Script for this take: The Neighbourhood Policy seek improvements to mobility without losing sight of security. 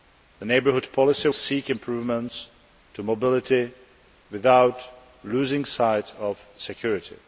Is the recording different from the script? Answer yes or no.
no